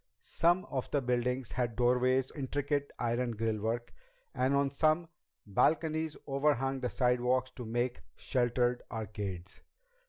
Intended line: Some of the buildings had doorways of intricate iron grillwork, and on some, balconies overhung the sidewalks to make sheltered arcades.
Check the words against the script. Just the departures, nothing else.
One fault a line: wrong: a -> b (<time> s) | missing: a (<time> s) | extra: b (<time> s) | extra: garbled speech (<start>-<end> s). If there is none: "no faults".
missing: of (2.3 s)